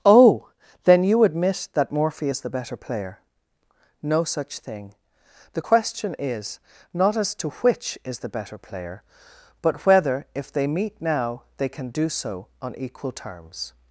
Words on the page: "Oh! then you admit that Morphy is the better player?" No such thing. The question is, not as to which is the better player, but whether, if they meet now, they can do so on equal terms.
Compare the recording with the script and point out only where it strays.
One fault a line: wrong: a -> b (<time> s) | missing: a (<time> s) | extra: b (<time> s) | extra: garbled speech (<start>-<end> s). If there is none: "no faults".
no faults